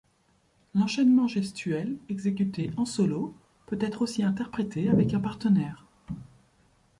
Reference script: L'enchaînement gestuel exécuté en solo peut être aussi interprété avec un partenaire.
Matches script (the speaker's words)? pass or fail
pass